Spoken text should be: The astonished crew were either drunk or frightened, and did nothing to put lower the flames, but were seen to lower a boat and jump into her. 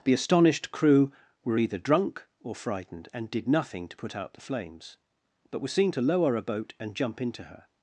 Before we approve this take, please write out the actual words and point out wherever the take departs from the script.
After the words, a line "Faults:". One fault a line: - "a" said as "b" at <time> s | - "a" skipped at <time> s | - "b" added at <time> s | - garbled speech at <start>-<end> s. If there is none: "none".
The astonished crew were either drunk or frightened, and did nothing to put out the flames, but were seen to lower a boat and jump into her.
Faults:
- "lower" said as "out" at 4.1 s